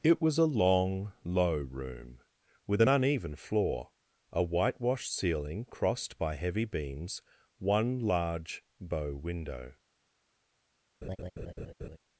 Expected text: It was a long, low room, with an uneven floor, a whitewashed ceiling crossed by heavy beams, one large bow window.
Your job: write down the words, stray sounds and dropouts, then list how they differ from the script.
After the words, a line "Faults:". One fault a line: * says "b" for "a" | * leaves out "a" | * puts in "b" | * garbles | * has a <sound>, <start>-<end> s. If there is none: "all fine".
It was a long, low room, with an uneven floor, a whitewashed ceiling crossed by heavy beams, one large bow window.
Faults:
* has a laugh, 11.0-12.0 s